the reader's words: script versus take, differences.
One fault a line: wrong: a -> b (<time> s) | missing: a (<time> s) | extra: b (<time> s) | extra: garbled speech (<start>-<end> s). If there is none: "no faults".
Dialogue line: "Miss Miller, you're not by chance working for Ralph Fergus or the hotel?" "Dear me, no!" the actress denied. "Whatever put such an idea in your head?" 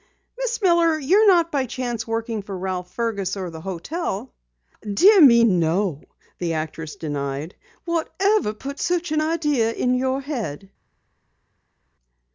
no faults